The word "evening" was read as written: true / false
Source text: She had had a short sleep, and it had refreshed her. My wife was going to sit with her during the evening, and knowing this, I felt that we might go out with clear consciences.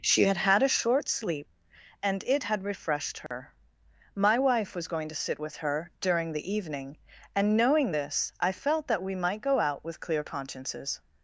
true